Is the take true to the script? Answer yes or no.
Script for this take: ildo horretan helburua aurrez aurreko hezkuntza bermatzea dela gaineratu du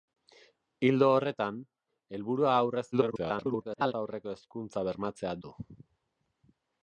no